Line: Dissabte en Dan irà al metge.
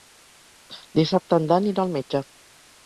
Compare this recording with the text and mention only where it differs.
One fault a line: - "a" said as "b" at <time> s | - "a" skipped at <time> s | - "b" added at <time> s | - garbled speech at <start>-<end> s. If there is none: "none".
none